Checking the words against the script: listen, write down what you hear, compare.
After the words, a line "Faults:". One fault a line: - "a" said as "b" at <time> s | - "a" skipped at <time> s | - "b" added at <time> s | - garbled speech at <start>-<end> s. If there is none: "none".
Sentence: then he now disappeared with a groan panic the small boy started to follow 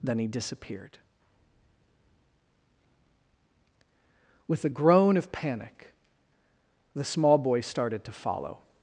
then he disappeared with a groan of panic the small boy started to follow
Faults:
- "now" skipped at 0.3 s
- "of" added at 5.2 s